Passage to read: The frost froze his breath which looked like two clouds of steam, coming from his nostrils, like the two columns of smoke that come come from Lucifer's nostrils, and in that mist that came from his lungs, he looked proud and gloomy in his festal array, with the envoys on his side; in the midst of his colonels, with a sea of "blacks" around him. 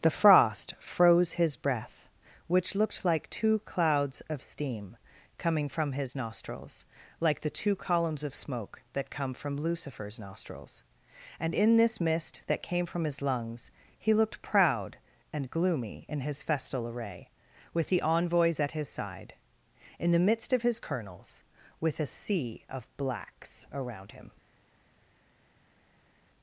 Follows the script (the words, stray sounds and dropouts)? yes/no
no